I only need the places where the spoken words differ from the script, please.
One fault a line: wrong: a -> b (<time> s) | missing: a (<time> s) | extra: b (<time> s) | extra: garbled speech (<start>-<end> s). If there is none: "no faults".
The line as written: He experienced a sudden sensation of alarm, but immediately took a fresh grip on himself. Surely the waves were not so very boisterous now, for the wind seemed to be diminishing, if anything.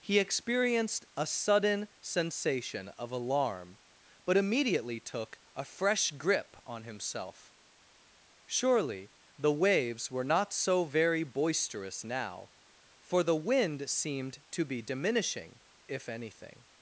no faults